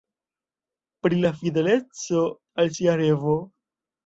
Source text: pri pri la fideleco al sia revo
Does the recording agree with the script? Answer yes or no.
no